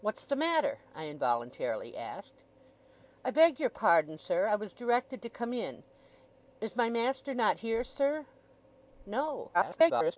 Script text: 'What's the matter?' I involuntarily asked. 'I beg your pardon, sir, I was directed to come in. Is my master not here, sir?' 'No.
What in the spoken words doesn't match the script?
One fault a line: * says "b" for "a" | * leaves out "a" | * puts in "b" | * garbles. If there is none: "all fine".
* garbles